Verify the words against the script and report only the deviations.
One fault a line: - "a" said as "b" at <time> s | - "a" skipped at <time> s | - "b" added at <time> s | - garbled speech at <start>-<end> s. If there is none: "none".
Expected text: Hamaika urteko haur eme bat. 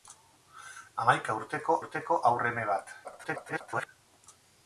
- "urteko" added at 1.8 s
- garbled speech at 3.0-3.9 s